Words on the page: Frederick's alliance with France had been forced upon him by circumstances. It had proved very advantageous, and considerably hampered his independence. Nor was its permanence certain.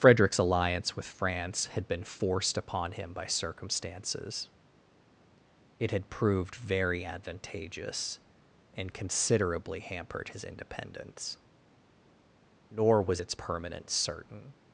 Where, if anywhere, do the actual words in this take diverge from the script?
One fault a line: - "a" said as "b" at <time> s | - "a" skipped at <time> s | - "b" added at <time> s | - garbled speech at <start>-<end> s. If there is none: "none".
none